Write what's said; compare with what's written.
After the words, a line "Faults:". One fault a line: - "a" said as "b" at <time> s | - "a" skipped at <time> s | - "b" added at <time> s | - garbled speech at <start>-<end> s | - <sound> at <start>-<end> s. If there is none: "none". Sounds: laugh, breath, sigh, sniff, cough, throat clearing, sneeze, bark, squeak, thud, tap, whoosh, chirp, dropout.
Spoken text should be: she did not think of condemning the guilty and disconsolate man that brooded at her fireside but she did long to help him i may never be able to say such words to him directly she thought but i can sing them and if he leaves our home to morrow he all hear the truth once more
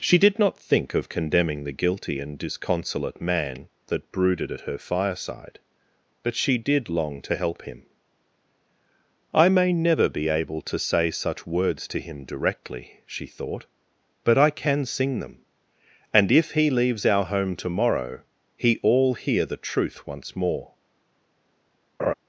she did not think of condemning the guilty and disconsolate man that brooded at her fireside but she did long to help him i may never be able to say such words to him directly she thought but i can sing them and if he leaves our home to morrow he all hear the truth once more
Faults:
- laugh at 22.0-22.1 s